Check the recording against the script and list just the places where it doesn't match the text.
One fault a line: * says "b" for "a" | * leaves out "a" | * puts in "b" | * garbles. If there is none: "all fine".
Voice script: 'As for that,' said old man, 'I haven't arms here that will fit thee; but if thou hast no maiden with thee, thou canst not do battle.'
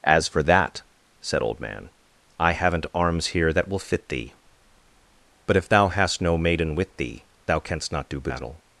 all fine